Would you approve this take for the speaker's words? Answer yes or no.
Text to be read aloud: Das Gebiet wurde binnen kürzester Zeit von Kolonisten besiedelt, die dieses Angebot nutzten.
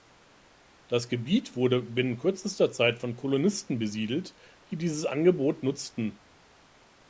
yes